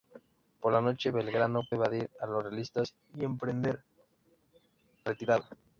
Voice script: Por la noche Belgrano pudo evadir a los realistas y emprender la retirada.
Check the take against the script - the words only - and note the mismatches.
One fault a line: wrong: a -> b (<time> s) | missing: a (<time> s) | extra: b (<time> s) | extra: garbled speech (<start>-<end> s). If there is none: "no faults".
missing: pudo (1.6 s)
missing: la (3.8 s)